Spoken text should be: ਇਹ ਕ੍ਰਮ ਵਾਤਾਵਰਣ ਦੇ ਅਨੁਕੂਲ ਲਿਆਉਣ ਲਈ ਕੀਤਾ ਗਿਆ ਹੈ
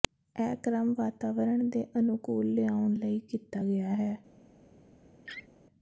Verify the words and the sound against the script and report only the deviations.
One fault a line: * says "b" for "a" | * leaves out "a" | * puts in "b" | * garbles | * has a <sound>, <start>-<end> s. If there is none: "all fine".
* has a laugh, 5.2-5.5 s